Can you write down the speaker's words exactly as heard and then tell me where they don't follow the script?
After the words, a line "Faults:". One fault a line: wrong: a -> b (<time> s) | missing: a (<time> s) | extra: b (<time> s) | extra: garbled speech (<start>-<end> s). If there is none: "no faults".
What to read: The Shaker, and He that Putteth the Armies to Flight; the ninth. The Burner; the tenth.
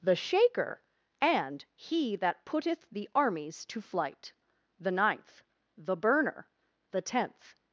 The Shaker, and He that Putteth the Armies to Flight; the ninth. The Burner; the tenth.
Faults:
no faults